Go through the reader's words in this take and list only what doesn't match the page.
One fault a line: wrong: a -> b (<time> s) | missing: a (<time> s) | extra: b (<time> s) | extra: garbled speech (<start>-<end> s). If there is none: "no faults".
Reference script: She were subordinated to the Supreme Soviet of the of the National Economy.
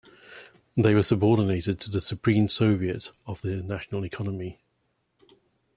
wrong: She -> They (0.8 s)
missing: of the (3.6 s)